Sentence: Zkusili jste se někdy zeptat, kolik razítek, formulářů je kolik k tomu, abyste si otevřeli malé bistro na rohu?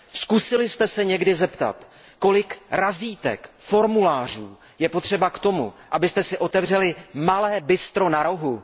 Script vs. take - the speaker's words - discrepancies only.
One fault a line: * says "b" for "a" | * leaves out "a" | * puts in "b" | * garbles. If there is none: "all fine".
* says "potřeba" for "kolik"